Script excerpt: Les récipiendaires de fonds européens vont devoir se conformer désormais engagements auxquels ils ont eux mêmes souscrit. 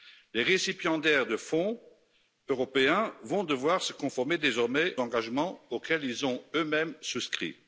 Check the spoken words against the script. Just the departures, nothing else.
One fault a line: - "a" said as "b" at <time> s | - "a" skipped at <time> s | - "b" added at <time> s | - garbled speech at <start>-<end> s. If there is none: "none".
none